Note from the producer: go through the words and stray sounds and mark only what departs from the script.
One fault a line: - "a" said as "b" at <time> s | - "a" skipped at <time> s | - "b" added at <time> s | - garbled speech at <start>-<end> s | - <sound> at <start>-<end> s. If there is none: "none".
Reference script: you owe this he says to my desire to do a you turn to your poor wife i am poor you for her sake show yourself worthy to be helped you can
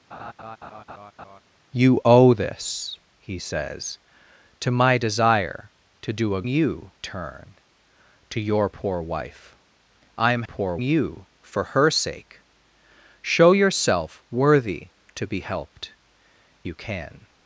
- laugh at 0.1-1.4 s